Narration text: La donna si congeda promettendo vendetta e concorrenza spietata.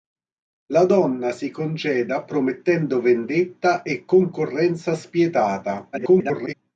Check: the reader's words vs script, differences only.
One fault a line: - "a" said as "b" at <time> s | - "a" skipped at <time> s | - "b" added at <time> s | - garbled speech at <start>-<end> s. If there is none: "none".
- garbled speech at 5.9-6.5 s